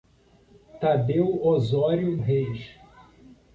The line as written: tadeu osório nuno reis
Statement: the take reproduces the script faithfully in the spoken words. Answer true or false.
false